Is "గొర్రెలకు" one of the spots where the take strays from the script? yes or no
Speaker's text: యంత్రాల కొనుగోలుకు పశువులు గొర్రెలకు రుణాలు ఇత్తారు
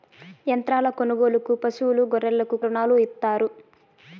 no